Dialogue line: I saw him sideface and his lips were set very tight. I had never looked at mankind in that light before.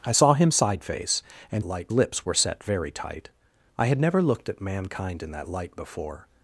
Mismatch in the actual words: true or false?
true